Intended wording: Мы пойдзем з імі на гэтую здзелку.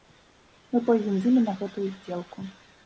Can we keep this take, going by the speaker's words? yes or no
yes